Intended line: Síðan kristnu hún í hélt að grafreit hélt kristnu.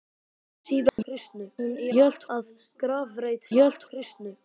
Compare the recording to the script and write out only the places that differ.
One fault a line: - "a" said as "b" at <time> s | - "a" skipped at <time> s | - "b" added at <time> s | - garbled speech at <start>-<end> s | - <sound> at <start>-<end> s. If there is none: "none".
- dropout at 0.9-1.0 s